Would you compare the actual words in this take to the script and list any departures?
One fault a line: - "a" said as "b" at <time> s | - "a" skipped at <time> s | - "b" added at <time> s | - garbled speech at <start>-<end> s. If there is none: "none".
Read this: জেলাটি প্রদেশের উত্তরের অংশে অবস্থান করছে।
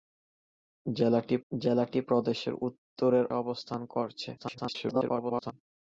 - "জেলাটি" added at 1.5 s
- "অংশে" skipped at 3.3 s
- garbled speech at 4.4-5.5 s